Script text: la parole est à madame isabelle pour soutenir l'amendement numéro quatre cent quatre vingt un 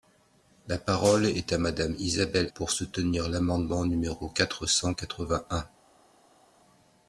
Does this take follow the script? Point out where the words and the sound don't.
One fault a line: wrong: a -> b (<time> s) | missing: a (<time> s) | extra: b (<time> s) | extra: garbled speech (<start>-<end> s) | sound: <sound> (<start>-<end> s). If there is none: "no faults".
no faults